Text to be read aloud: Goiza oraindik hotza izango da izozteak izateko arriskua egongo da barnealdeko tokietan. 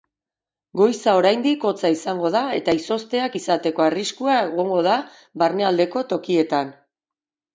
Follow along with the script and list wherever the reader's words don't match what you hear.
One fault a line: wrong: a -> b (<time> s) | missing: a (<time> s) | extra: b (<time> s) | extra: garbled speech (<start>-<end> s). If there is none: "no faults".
extra: eta (2.6 s)